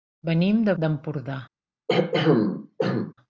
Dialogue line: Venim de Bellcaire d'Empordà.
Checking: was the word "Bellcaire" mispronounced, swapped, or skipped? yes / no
yes